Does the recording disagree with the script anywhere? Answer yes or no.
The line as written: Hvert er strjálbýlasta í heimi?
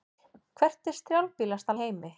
no